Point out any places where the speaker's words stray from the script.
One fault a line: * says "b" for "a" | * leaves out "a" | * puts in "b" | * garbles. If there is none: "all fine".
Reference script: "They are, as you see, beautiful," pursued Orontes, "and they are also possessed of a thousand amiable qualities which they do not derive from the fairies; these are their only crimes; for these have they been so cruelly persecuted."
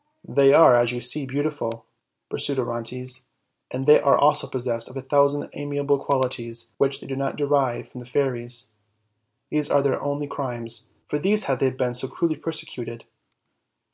all fine